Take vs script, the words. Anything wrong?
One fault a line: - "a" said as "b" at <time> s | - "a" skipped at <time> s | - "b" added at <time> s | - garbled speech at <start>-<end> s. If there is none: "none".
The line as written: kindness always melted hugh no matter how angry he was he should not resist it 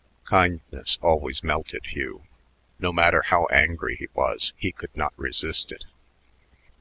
- "should" said as "could" at 4.7 s